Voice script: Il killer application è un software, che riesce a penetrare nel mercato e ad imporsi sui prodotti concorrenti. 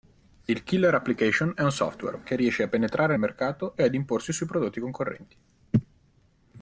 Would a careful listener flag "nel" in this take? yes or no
yes